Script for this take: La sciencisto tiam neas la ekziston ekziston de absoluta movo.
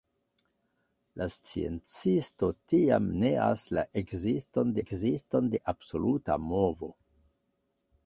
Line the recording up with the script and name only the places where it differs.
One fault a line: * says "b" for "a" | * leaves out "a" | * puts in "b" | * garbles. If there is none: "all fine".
all fine